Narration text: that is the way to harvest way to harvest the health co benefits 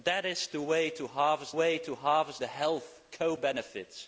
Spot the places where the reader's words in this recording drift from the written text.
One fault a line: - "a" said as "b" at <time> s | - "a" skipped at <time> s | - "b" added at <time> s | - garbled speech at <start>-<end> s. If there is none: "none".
none